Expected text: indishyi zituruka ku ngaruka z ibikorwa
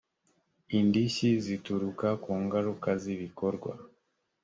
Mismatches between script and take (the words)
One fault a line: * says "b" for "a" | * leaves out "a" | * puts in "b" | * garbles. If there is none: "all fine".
all fine